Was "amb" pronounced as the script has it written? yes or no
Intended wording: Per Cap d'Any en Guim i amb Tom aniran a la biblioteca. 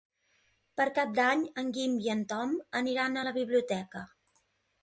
no